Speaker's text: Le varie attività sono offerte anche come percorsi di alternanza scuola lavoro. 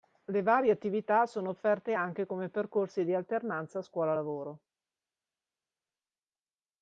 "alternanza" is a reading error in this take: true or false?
false